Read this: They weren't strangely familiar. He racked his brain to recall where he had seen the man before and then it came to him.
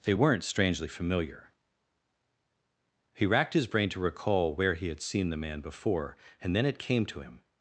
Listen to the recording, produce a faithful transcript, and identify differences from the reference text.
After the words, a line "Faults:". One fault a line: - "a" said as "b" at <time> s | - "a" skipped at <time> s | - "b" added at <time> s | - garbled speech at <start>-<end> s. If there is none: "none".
They weren't strangely familiar. He racked his brain to recall where he had seen the man before and then it came to him.
Faults:
none